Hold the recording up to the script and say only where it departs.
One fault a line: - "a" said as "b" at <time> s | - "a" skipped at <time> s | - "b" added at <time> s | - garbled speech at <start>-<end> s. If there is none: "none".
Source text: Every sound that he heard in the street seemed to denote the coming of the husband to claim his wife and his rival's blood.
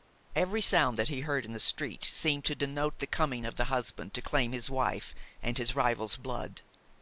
none